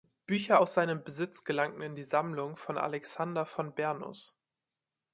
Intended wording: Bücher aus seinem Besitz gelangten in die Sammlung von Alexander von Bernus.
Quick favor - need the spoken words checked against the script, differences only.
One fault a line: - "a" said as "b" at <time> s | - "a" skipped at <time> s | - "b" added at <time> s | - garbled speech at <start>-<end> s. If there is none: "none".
none